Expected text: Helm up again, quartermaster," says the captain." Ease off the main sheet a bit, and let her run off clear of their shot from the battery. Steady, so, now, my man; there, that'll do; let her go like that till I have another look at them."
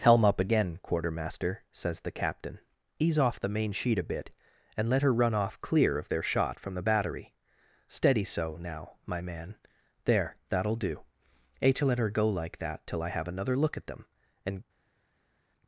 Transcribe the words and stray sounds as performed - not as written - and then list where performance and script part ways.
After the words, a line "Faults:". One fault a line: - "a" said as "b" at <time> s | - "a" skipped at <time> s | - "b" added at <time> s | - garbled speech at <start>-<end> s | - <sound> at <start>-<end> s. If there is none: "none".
Helm up again, quartermaster," says the captain." Ease off the main sheet a bit, and let her run off clear of their shot from the battery. Steady, so, now, my man; there, that'll do; a to let her go like that till I have another look at them." and
Faults:
- "a to" added at 11.6 s
- "and" added at 14.4 s